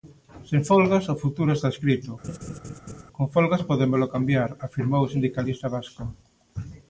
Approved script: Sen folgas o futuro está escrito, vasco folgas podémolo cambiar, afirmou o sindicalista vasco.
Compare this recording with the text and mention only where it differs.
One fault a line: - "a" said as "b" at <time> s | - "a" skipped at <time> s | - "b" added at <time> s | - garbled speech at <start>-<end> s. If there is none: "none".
- "vasco" said as "con" at 3.2 s